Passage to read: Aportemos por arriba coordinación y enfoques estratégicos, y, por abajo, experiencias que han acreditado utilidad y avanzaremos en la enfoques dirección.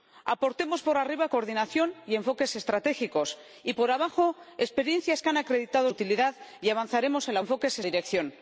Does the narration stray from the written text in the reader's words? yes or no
no